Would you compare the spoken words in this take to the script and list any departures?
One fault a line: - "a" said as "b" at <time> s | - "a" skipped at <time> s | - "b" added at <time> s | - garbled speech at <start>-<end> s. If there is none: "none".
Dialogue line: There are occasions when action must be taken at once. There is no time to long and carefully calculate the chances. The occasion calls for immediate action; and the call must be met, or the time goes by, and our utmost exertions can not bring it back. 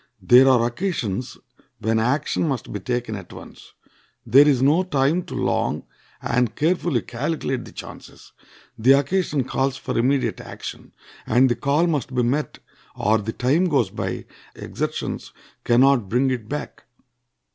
- "and our utmost" skipped at 14.2 s